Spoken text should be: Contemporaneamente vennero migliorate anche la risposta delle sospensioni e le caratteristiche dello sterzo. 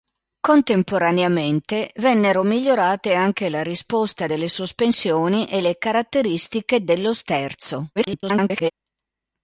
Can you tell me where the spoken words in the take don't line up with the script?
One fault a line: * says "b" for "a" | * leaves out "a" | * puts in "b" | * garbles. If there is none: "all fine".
* garbles